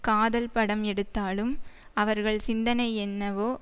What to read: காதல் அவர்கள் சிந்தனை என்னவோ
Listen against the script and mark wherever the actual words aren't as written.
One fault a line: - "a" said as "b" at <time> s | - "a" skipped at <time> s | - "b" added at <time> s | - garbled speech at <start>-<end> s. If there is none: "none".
- "படம் எடுத்தாலும்" added at 0.5 s